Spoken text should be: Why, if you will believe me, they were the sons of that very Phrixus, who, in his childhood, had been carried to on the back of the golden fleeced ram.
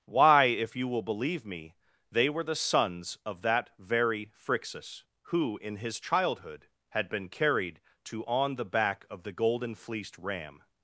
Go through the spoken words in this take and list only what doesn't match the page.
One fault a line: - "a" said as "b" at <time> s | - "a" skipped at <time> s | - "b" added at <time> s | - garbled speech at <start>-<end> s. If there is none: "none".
none